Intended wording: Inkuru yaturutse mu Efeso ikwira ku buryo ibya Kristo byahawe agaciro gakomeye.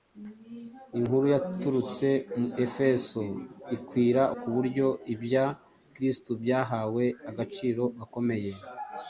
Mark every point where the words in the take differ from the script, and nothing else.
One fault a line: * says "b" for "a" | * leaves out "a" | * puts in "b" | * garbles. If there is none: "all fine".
all fine